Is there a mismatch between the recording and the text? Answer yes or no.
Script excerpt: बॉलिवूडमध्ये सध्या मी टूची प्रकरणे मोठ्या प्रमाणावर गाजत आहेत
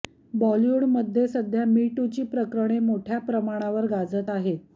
no